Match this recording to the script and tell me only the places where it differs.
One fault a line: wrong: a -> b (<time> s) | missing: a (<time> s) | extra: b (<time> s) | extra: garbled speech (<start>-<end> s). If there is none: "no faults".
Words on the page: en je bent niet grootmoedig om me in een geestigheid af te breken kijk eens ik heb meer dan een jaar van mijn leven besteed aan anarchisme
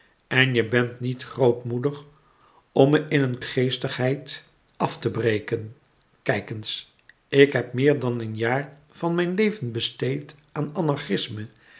no faults